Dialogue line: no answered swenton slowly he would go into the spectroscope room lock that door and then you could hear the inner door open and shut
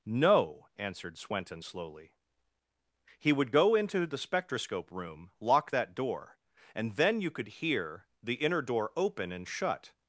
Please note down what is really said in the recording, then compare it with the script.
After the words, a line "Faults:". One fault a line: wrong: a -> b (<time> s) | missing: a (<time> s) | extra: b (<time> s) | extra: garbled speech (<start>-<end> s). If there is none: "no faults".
no answered swenton slowly he would go into the spectroscope room lock that door and then you could hear the inner door open and shut
Faults:
no faults